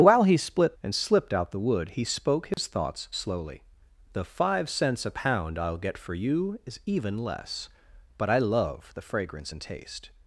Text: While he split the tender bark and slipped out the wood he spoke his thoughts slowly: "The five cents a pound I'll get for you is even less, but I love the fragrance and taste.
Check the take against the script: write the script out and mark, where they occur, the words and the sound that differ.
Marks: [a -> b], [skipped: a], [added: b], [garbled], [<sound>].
While he split [skipped: the tender bark] and slipped out the wood he spoke his [dropout] thoughts slowly: "The five cents a pound I'll get for you is even less, but I love the fragrance and taste.